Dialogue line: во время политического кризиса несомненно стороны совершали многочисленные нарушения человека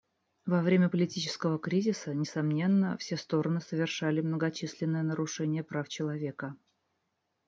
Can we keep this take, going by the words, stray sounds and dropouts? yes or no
no